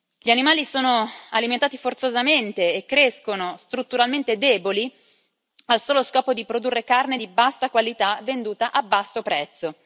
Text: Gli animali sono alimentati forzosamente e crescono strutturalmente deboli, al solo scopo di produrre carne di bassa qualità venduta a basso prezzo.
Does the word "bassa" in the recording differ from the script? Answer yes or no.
no